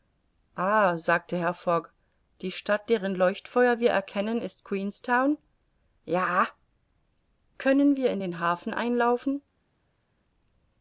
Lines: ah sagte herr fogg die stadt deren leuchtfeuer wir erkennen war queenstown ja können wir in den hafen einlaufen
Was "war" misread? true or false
true